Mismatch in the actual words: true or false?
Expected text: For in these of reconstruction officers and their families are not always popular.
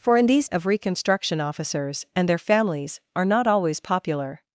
false